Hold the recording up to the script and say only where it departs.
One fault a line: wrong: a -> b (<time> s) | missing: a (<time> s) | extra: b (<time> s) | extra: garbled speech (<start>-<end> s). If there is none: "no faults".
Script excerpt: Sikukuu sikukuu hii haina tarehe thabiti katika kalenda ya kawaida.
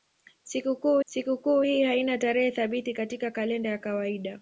no faults